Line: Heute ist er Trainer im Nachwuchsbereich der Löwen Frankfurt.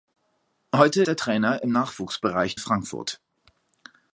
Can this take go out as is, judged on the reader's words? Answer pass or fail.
fail